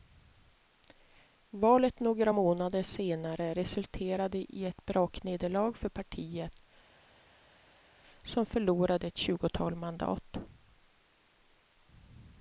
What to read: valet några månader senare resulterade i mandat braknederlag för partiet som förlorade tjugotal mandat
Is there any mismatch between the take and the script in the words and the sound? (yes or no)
yes